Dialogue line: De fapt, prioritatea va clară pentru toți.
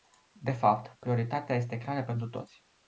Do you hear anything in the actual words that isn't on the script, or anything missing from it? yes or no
yes